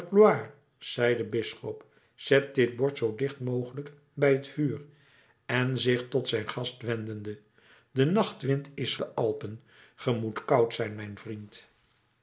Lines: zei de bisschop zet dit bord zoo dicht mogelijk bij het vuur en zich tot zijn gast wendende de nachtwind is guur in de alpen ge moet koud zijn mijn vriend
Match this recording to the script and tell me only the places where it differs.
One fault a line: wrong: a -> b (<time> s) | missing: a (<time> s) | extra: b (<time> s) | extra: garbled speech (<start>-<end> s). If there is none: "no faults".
missing: guur in (9.0 s)